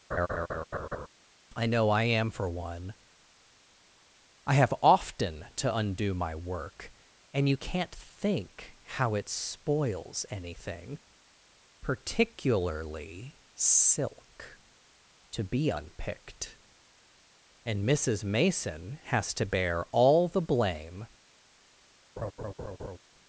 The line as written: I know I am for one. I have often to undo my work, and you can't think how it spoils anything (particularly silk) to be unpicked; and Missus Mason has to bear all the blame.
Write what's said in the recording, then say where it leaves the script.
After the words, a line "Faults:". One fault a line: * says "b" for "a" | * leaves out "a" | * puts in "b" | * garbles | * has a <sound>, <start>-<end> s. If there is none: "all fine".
I know I am for one. I have often to undo my work, and you can't think how it spoils anything (particularly silk) to be unpicked; and Missus Mason has to bear all the blame.
Faults:
* has a laugh, 0.1-1.1 s
* has a laugh, 22.2-23.0 s